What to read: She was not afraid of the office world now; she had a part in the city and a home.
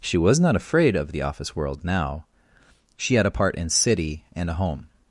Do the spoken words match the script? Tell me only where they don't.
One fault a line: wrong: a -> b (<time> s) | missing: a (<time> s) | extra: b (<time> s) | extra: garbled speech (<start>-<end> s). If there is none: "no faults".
missing: the (3.7 s)